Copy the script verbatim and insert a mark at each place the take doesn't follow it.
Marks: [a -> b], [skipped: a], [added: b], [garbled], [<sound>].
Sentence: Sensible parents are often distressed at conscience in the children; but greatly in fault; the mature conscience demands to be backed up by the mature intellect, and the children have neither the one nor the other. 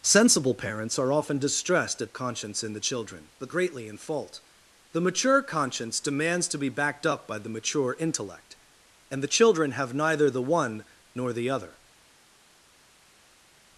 Sensible parents are often distressed at conscience in the children; but greatly in fault; the mature conscience demands to be backed up by the mature intellect, and the children have neither the one nor the other.